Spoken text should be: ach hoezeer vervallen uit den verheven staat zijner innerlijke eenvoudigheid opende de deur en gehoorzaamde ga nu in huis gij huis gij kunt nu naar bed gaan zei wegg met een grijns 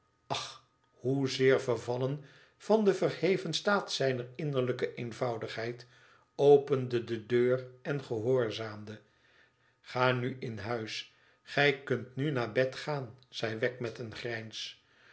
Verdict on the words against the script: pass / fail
fail